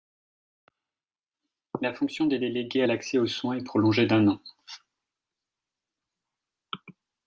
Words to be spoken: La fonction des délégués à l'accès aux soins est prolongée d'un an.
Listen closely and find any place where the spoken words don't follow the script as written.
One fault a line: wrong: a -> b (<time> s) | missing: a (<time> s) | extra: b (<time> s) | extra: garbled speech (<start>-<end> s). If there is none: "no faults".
no faults